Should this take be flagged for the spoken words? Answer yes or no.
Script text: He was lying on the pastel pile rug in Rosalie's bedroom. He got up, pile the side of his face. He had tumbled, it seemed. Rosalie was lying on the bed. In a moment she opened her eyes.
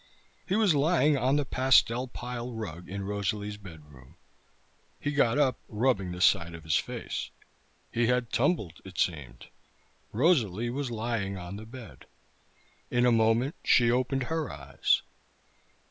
yes